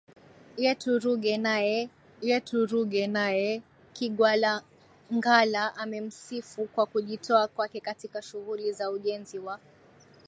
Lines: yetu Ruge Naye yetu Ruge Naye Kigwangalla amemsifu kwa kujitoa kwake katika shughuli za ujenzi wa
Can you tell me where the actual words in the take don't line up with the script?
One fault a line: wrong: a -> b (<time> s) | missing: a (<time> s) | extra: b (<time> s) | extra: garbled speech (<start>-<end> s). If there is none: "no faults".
no faults